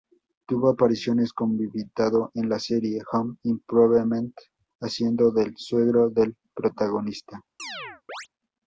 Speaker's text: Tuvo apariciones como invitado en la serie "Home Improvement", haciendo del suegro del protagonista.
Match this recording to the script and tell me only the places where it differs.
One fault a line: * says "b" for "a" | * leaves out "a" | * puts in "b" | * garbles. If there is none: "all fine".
all fine